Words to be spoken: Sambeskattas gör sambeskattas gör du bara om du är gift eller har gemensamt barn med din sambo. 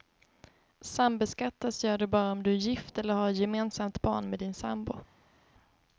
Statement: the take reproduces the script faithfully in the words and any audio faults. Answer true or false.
false